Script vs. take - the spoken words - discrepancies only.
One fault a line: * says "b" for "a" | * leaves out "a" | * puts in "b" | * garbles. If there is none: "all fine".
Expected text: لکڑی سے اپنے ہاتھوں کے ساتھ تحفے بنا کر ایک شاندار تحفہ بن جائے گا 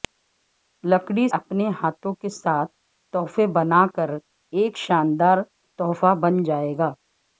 * leaves out "سے"